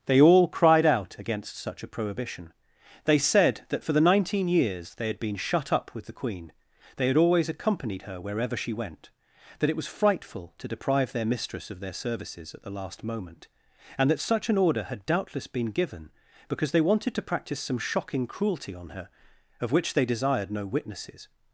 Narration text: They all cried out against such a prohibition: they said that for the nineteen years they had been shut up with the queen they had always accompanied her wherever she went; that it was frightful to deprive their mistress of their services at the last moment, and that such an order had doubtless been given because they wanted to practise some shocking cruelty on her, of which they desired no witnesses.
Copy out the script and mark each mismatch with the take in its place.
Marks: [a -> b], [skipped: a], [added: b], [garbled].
They all cried out against such a prohibition: they said that for the nineteen years they had been shut up with the queen they had always accompanied her wherever she went; that it was frightful to deprive their mistress of their services at the last moment, and that such an order had doubtless been given because they wanted to practise some shocking cruelty on her, of which they desired no witnesses.